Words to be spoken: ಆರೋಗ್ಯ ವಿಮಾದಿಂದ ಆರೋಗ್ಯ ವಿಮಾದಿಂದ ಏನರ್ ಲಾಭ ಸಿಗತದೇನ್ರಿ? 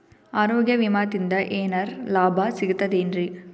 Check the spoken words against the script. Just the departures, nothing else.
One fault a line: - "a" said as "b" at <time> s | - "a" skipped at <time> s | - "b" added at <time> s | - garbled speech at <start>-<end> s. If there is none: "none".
- "ಆರೋಗ್ಯ ವಿಮಾದಿಂದ" skipped at 1.3 s